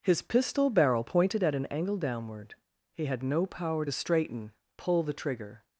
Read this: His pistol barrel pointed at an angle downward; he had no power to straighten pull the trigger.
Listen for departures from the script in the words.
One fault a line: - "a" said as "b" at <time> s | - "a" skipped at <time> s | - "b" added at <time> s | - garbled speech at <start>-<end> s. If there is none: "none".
none